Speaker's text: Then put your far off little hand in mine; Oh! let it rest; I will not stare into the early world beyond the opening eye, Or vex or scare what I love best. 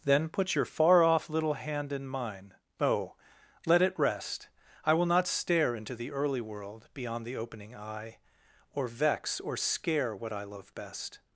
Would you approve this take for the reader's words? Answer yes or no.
yes